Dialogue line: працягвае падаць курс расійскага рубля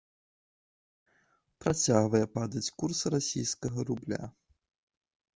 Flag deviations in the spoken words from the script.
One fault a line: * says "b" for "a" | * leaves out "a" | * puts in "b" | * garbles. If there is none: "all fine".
all fine